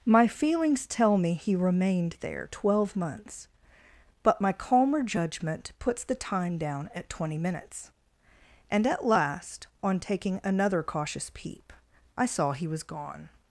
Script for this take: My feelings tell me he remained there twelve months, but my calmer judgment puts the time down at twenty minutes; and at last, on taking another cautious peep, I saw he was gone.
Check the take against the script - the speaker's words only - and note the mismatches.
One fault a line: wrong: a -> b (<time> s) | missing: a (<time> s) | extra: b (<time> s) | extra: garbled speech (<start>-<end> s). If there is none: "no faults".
no faults